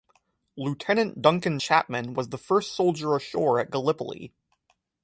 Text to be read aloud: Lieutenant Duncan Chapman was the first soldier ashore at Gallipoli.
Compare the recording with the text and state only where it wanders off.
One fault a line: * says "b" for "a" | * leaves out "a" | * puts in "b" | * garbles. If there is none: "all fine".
all fine